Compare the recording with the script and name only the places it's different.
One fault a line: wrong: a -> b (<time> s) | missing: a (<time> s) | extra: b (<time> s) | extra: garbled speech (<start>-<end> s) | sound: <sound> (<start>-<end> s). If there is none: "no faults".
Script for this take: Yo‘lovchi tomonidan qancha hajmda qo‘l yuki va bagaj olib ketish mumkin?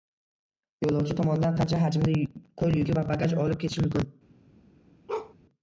sound: bark (5.1-5.3 s)